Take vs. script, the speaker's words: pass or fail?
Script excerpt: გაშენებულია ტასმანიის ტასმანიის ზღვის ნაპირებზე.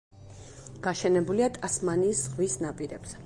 fail